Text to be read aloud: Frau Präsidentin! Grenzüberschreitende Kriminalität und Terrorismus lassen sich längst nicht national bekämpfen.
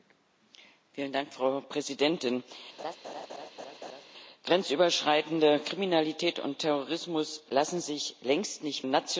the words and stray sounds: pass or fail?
fail